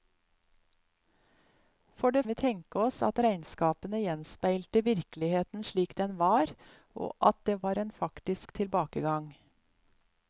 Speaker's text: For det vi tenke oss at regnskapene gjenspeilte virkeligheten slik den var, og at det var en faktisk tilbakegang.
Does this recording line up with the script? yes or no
yes